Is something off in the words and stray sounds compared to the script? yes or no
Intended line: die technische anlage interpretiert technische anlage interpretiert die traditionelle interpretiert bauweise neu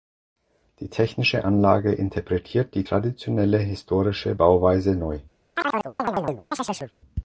yes